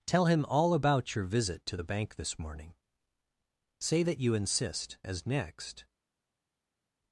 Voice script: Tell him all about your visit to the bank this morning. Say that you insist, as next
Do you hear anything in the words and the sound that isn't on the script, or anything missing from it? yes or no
no